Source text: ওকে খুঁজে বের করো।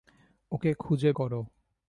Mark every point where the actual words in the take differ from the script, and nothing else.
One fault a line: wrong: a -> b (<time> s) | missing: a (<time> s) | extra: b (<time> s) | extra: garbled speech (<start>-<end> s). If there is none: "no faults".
missing: বের (1.1 s)